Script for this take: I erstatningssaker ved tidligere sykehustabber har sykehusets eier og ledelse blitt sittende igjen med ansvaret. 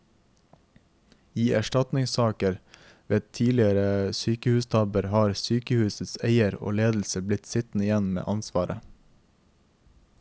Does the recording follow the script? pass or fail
pass